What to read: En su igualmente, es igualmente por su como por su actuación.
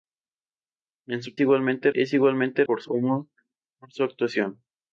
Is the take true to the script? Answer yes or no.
yes